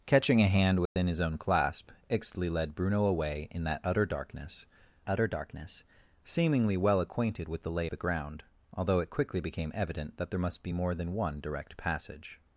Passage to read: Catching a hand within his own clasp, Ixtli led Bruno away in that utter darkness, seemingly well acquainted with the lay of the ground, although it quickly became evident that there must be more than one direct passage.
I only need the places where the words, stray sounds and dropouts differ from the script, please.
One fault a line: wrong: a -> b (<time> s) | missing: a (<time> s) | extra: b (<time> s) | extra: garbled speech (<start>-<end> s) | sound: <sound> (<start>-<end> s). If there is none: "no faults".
sound: dropout (0.9-1.0 s)
extra: utter darkness (5.1 s)
missing: of (7.9 s)